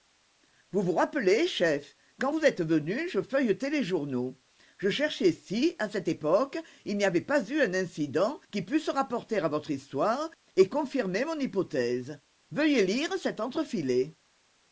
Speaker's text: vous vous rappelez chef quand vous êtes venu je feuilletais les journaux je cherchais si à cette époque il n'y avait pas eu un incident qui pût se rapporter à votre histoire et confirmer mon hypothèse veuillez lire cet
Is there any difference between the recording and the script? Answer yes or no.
no